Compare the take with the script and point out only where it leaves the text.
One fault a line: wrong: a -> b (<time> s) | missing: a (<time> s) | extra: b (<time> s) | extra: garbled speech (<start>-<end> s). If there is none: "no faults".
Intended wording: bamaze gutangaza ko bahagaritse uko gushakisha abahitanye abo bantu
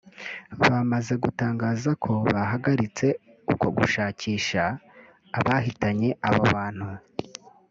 no faults